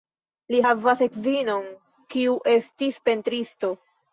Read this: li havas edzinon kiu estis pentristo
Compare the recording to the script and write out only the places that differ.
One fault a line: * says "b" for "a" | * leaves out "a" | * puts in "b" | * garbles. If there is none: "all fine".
all fine